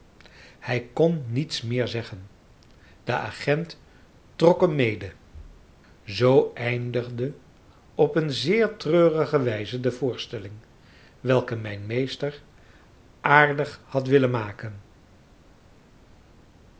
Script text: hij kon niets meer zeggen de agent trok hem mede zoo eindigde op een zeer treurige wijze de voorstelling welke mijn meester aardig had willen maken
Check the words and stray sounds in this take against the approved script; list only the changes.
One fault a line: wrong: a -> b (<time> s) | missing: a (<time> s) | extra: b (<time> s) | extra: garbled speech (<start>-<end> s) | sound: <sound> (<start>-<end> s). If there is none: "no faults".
no faults